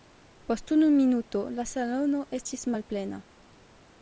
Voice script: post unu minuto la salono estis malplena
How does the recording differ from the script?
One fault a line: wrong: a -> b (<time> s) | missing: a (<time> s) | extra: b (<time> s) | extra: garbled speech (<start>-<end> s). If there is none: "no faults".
no faults